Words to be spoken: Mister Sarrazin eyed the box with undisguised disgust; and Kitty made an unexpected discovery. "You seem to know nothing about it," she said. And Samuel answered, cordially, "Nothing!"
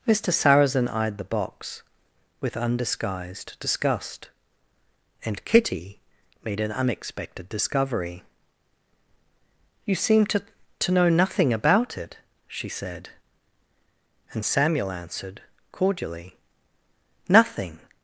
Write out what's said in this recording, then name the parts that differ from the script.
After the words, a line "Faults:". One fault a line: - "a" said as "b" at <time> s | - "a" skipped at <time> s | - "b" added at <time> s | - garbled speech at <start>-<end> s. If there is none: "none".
Mister Sarrazin eyed the box with undisguised disgust; and Kitty made an unexpected discovery. "You seem to to know nothing about it," she said. And Samuel answered, cordially, "Nothing!"
Faults:
- "to" added at 10.8 s